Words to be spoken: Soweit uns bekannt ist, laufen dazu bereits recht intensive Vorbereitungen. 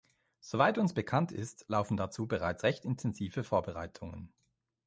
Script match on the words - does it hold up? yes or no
yes